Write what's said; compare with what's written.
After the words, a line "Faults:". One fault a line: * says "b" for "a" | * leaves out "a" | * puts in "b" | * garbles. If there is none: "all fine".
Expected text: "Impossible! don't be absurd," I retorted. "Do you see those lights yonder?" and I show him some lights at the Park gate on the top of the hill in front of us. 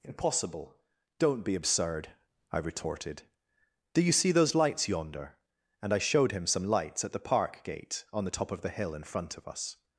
"Impossible! don't be absurd," I retorted. "Do you see those lights yonder?" and I showed him some lights at the Park gate on the top of the hill in front of us.
Faults:
* says "showed" for "show"